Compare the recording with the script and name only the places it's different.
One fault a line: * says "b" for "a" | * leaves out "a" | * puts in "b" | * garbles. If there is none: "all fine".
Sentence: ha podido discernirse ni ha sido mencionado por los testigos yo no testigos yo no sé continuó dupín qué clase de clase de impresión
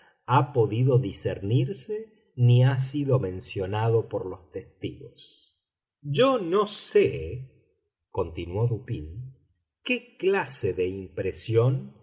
* leaves out "testigos yo no"
* leaves out "clase de"